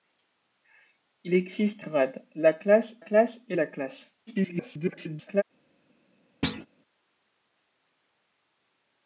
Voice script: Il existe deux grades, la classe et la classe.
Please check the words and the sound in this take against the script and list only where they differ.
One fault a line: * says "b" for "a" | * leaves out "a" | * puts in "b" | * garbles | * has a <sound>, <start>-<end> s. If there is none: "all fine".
* leaves out "deux"
* puts in "classe"
* garbles
* has a thud, 6.4-6.7 s